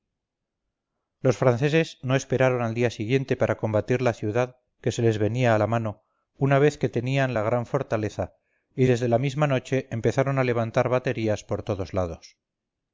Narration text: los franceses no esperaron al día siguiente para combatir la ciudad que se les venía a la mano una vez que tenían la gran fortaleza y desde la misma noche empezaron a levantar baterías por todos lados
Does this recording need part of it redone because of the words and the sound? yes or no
no